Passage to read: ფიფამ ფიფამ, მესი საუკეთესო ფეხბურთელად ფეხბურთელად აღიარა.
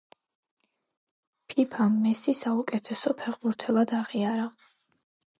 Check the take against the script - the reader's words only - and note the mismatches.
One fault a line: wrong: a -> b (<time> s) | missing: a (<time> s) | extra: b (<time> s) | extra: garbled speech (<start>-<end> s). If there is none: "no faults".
missing: ფიფამ (2.0 s)
missing: ფეხბურთელად (3.9 s)